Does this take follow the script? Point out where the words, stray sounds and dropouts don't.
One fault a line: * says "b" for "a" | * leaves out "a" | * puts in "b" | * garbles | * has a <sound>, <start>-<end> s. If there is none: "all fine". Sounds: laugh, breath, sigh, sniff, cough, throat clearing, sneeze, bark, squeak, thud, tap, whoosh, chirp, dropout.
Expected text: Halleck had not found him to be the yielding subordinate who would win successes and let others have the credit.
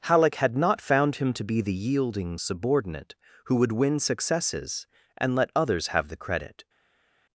all fine